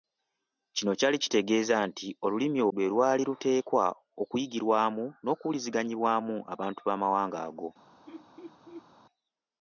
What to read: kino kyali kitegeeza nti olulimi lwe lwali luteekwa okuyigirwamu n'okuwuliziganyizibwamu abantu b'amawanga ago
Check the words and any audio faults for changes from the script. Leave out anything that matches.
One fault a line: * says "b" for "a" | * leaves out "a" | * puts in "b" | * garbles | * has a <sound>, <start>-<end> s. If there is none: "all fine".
* has a laugh, 8.1-8.9 s